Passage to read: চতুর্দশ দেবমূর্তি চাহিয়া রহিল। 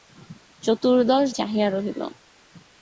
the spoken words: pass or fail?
fail